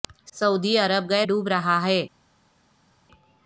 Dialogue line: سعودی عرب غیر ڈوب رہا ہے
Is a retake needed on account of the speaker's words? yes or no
no